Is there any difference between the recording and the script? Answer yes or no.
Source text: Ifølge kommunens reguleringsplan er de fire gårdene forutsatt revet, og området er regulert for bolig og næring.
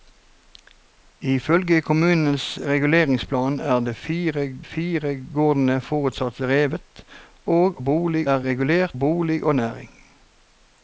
yes